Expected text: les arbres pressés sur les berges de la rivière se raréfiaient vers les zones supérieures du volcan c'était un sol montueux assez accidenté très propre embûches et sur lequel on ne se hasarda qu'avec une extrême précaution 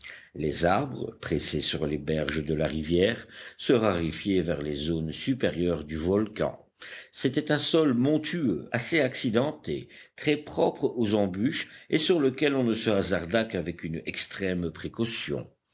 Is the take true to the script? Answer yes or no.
no